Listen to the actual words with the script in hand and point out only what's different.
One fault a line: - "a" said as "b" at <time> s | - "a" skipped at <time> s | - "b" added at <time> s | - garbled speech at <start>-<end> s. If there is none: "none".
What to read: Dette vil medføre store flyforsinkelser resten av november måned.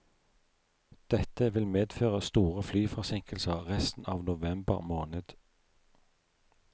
none